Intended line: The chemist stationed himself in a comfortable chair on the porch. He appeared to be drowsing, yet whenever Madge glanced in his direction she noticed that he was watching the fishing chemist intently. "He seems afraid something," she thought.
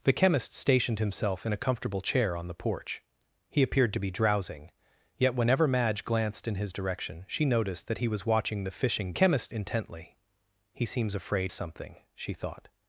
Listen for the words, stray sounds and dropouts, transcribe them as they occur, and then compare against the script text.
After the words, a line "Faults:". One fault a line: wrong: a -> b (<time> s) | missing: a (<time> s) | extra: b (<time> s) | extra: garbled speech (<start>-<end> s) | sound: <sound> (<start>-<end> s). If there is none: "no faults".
The chemist stationed himself in a comfortable chair on the porch. He appeared to be drowsing, yet whenever Madge glanced in his direction she noticed that he was watching the fishing chemist intently. "He seems afraid something," she thought.
Faults:
no faults